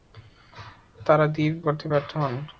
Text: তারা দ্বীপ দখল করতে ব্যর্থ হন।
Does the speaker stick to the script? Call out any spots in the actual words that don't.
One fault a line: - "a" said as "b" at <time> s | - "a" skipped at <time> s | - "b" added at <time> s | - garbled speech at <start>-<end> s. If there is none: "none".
- "দখল" skipped at 1.5 s